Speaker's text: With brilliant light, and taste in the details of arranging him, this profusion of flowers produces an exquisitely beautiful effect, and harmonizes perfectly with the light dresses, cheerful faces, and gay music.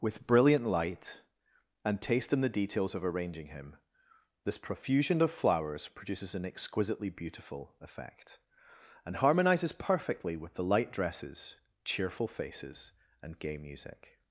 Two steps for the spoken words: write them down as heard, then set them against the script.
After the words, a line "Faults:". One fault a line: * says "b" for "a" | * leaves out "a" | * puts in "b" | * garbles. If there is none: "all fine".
With brilliant light, and taste in the details of arranging him, this profusion of flowers produces an exquisitely beautiful effect, and harmonizes perfectly with the light dresses, cheerful faces, and gay music.
Faults:
all fine